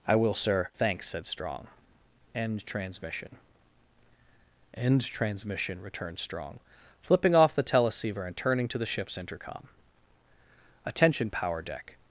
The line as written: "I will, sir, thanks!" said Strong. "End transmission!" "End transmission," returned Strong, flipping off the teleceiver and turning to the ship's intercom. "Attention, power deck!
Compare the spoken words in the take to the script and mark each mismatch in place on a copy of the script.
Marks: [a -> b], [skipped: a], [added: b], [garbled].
"I will, sir, thanks!" said Strong. "End transmission!" "End transmission," returned Strong, flipping off the teleceiver and turning to the ship's intercom. "Attention, power deck!